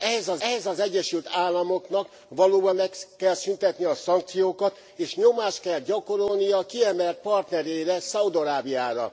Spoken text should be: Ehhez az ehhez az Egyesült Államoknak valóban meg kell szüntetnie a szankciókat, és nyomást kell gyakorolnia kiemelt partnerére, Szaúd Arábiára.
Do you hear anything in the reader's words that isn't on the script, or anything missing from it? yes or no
no